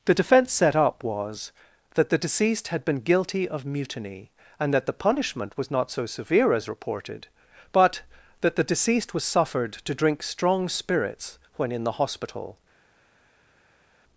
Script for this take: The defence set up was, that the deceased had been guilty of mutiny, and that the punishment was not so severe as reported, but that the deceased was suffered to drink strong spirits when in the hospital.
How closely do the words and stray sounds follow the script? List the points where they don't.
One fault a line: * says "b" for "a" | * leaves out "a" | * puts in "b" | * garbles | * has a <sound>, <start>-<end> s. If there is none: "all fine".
all fine